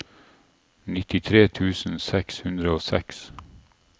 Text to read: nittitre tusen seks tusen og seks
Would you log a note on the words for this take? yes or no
yes